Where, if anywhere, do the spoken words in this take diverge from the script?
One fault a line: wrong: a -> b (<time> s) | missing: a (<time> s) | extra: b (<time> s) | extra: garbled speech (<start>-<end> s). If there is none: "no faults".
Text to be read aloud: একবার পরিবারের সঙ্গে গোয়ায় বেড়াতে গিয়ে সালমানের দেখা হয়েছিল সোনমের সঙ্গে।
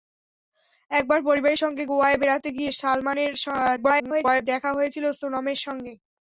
extra: garbled speech (3.8-4.4 s)